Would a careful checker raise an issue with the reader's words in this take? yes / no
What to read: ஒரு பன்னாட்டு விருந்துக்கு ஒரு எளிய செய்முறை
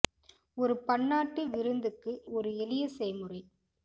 no